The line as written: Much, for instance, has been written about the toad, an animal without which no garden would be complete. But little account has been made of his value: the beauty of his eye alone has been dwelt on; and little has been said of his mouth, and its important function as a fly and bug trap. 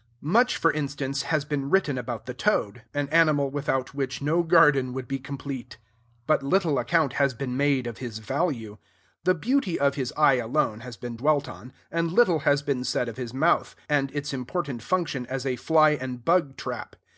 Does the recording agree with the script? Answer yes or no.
yes